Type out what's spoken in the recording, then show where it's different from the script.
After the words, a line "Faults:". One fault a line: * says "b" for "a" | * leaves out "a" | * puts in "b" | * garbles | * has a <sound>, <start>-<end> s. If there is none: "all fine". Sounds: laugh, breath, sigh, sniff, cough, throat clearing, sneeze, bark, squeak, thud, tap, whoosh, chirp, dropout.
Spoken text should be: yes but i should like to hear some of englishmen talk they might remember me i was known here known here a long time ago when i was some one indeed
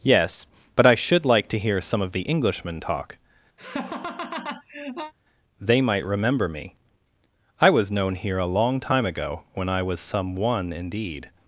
yes but i should like to hear some of the englishmen talk they might remember me i was known here a long time ago when i was some one indeed
Faults:
* puts in "the"
* has a laugh, 3.6-5.1 s
* leaves out "known here"